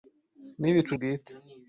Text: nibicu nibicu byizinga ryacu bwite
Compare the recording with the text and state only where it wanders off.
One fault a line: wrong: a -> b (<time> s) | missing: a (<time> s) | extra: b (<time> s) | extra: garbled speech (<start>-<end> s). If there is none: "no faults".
missing: nibicu byizinga ryacu (0.9 s)